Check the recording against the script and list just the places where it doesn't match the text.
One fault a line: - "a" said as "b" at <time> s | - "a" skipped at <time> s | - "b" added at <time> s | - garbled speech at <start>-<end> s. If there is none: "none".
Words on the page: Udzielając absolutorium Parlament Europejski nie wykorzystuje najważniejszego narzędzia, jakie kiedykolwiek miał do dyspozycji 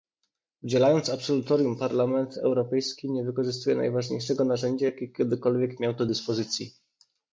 none